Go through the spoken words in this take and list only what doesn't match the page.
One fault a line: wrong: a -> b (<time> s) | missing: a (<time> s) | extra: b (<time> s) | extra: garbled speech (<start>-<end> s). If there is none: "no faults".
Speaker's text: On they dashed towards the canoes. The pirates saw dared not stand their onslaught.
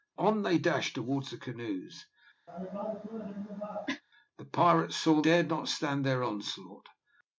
no faults